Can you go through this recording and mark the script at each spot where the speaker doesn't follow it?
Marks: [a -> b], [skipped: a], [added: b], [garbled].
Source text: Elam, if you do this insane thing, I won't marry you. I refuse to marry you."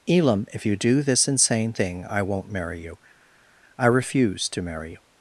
Elam, if you do this insane thing, I won't marry you. I refuse to marry you."